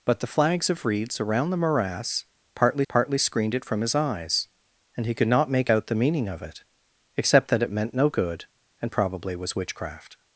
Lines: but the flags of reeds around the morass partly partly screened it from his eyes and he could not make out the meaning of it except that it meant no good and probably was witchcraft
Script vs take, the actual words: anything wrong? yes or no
no